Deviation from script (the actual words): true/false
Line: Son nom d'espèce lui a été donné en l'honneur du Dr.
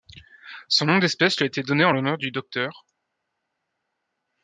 false